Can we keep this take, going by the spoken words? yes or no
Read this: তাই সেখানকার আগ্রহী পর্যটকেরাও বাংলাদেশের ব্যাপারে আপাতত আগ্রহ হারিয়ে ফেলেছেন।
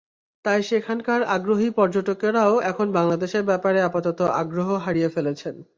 no